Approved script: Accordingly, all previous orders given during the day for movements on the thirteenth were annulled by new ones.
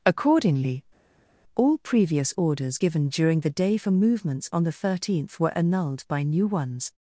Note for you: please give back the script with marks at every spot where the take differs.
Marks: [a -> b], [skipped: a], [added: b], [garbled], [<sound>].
Accordingly, all previous orders given during the day for movements on the thirteenth were annulled by new ones.